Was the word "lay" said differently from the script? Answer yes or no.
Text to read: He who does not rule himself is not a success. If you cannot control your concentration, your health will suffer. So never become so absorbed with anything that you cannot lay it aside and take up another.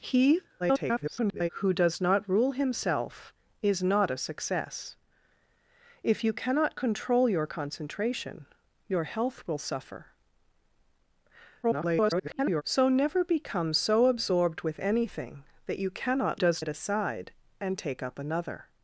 yes